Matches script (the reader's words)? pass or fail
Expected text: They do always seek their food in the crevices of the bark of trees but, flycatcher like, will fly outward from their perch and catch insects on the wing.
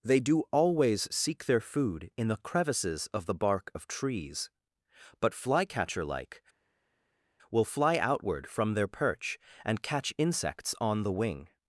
pass